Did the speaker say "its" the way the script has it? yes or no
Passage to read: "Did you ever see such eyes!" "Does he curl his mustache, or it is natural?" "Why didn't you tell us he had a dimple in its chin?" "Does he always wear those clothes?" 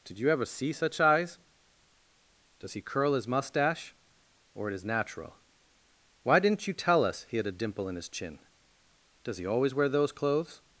no